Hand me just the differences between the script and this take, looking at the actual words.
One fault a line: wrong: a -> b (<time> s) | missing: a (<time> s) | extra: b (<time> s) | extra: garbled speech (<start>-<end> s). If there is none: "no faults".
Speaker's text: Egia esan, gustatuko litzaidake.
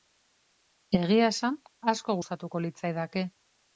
extra: asko (1.9 s)